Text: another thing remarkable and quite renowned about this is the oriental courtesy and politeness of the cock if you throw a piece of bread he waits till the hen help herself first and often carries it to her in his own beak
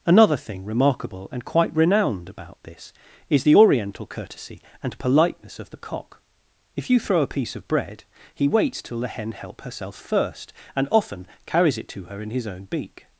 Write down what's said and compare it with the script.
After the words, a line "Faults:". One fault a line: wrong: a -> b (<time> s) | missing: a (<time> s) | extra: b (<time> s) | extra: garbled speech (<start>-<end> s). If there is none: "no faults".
another thing remarkable and quite renowned about this is the oriental courtesy and politeness of the cock if you throw a piece of bread he waits till the hen help herself first and often carries it to her in his own beak
Faults:
no faults